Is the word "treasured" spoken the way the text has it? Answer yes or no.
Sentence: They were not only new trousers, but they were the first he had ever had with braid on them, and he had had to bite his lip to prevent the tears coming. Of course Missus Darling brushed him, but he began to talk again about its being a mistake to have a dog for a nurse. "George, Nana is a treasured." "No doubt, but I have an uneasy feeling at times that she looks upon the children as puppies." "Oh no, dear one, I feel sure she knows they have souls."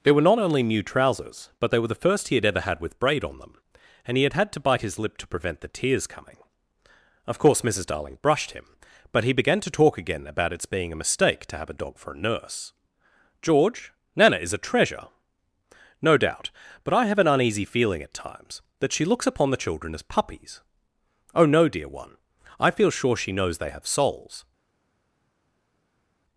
no